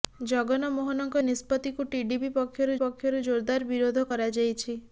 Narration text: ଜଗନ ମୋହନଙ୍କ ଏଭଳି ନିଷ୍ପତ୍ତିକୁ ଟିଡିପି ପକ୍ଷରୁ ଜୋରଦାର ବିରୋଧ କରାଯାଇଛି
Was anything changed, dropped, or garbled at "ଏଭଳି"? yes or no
yes